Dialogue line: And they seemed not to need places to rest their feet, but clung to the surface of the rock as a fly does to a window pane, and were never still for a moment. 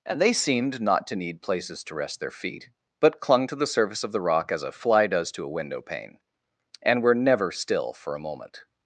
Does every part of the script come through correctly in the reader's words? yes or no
yes